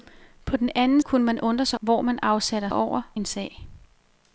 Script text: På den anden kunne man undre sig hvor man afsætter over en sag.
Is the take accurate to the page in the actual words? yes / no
yes